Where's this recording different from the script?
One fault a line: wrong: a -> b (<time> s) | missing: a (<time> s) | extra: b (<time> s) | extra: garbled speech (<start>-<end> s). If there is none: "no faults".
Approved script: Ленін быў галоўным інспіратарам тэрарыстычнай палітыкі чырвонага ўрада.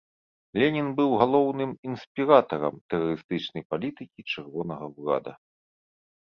no faults